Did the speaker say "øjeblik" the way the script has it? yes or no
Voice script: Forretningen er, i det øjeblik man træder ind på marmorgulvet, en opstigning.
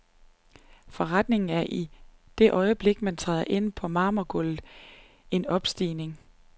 yes